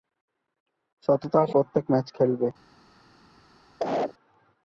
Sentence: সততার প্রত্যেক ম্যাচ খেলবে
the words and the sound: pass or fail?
fail